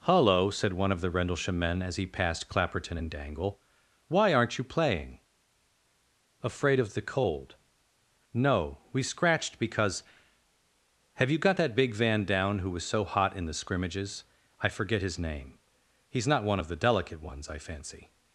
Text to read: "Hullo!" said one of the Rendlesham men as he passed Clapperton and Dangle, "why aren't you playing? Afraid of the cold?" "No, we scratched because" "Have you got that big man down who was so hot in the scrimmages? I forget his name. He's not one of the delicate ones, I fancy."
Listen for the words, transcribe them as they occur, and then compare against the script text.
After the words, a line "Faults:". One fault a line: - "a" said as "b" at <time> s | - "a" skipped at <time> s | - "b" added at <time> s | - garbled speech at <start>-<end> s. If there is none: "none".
"Hullo!" said one of the Rendlesham men as he passed Clapperton and Dangle, "why aren't you playing? Afraid of the cold?" "No, we scratched because" "Have you got that big van down who was so hot in the scrimmages? I forget his name. He's not one of the delicate ones, I fancy."
Faults:
- "man" said as "van" at 12.0 s